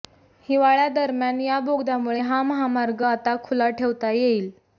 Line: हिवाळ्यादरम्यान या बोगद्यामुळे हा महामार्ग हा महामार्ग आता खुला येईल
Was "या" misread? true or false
false